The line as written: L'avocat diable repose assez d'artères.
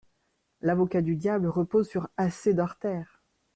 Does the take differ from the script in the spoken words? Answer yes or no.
yes